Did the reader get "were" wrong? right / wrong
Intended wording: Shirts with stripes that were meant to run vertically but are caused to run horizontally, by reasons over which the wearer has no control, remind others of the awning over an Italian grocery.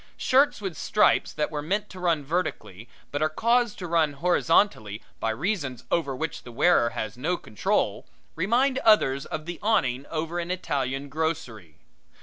right